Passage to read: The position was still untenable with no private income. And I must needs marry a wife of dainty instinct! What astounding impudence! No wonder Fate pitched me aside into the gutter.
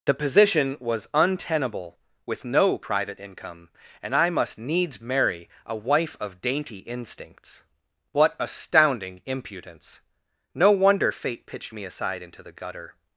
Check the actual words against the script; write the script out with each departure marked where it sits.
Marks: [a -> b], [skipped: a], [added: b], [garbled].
The position was [skipped: still] untenable with no private income. And I must needs marry a wife of dainty [instinct! -> instincts] What astounding impudence! No wonder Fate pitched me aside into the gutter.